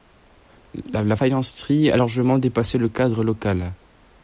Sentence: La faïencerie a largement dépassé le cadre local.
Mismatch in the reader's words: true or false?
false